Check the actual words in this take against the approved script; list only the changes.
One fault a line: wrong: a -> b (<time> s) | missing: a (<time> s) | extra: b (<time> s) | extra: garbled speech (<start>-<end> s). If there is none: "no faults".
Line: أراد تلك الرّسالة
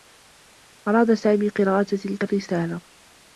extra: سامي قراءة (1.1 s)